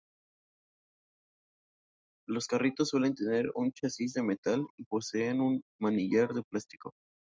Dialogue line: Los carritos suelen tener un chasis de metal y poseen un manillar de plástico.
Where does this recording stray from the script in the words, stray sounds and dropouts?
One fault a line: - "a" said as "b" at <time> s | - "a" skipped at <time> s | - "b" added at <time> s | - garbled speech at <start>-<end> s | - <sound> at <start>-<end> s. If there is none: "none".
none